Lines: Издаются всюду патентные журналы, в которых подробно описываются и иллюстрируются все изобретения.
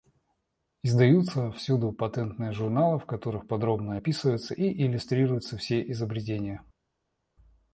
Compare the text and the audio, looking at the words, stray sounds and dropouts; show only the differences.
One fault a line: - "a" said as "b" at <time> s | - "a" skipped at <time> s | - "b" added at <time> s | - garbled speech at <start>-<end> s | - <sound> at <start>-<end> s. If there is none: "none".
none